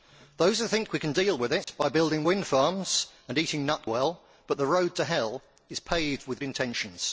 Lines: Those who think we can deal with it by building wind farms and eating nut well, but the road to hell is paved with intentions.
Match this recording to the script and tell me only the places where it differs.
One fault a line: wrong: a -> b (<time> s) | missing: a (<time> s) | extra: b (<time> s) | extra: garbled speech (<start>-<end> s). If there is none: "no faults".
no faults